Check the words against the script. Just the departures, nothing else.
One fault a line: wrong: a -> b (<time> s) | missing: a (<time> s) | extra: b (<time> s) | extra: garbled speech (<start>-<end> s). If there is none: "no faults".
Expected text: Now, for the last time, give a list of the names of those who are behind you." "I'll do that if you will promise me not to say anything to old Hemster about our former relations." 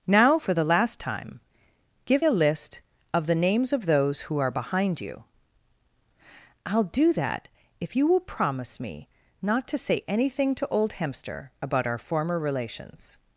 no faults